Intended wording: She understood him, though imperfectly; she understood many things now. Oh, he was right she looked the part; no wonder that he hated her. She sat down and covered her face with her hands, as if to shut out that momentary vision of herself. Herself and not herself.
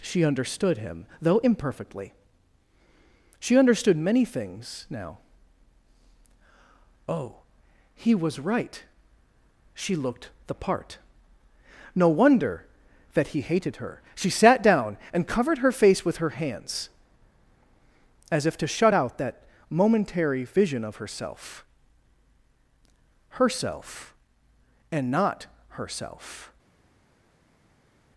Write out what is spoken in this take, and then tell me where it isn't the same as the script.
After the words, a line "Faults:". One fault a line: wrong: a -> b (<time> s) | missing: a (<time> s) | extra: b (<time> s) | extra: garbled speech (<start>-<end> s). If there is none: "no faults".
She understood him, though imperfectly; she understood many things now. Oh, he was right she looked the part; no wonder that he hated her. She sat down and covered her face with her hands, as if to shut out that momentary vision of herself. Herself and not herself.
Faults:
no faults